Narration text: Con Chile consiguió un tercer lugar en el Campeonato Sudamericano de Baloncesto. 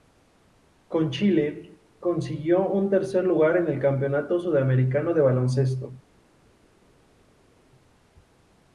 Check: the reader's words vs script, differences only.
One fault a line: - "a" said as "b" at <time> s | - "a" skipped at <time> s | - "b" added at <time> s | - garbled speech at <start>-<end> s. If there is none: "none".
none